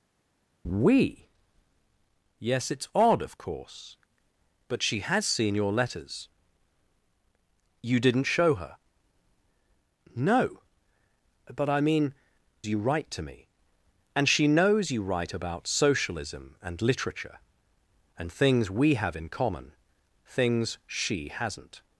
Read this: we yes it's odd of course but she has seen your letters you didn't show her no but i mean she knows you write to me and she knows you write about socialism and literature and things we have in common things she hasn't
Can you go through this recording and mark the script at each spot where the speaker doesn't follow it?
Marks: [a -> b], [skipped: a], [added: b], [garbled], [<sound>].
we yes it's odd of course but she has seen your letters you didn't show her no but i mean [skipped: she knows] you write to me and she knows you write about socialism and literature and things we have in common things she hasn't